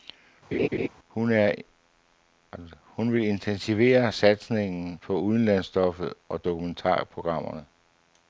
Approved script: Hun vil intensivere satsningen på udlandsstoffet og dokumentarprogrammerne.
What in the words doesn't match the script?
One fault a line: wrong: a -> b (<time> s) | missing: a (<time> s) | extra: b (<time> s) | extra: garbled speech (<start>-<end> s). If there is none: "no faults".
no faults